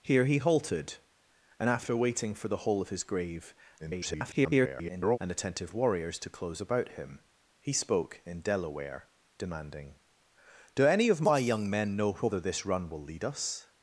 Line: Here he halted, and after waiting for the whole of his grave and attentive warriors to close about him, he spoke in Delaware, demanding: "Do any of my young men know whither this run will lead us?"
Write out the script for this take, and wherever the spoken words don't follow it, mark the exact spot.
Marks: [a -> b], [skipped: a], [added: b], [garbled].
Here he halted, and after waiting for the whole of his grave [garbled] and attentive warriors to close about him, he spoke in Delaware, demanding: "Do any of my young men know whither this run will lead us?"